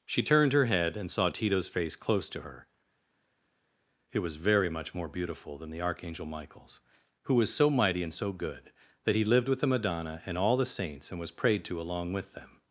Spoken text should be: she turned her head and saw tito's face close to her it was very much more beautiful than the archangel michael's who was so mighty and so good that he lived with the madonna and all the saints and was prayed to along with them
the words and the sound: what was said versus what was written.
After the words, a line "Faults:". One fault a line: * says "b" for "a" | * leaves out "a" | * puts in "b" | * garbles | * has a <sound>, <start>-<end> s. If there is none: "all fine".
she turned her head and saw tito's face close to her it was very much more beautiful than the archangel michael's who was so mighty and so good that he lived with the madonna and all the saints and was prayed to along with them
Faults:
all fine